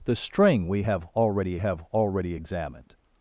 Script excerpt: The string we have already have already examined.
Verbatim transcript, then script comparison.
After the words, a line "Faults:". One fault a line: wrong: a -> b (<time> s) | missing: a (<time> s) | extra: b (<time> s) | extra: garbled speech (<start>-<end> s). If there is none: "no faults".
The string we have already have already examined.
Faults:
no faults